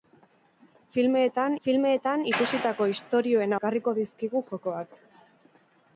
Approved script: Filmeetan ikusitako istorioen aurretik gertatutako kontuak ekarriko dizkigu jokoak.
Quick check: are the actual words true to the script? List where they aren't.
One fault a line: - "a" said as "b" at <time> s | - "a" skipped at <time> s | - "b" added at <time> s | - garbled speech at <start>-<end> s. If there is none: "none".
- "filmeetan" added at 1.7 s
- "aurretik gertatutako kontuak" skipped at 3.6 s